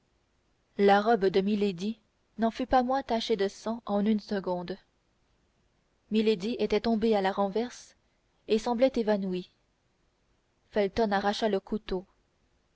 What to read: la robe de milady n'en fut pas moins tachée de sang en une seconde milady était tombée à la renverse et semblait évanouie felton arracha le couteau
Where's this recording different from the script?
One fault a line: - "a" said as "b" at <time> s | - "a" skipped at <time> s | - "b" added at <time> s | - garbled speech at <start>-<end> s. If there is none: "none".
none